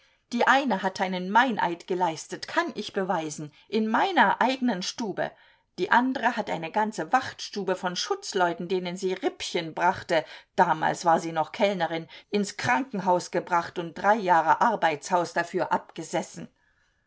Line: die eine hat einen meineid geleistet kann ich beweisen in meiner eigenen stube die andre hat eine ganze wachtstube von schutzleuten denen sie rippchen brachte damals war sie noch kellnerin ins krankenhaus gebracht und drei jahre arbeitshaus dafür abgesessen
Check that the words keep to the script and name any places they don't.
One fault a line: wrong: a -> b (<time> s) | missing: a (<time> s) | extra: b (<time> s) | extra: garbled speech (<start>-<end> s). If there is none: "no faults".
no faults